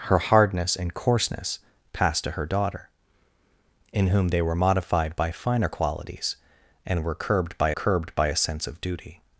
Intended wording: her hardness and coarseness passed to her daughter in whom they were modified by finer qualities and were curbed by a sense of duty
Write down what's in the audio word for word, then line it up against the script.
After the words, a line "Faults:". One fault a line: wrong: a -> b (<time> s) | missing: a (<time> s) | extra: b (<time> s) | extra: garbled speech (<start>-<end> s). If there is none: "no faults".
her hardness and coarseness passed to her daughter in whom they were modified by finer qualities and were curbed by curbed by a sense of duty
Faults:
extra: curbed by (7.7 s)